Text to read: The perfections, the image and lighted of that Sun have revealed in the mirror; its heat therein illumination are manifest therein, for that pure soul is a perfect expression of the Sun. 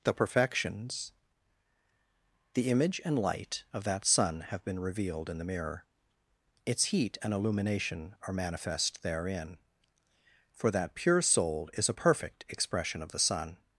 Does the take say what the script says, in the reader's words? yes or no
no